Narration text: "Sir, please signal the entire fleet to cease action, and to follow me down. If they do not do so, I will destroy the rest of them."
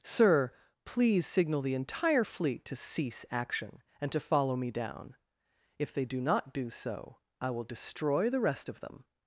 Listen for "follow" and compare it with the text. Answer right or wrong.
right